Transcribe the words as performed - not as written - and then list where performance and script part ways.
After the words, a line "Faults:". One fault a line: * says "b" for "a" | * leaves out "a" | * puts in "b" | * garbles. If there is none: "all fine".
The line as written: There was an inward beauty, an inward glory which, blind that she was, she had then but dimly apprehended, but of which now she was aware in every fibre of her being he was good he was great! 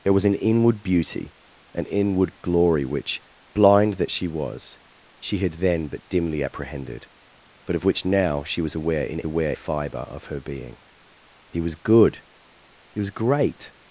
There was an inward beauty, an inward glory which, blind that she was, she had then but dimly apprehended, but of which now she was aware in aware fibre of her being he was good he was great!
Faults:
* says "aware" for "every"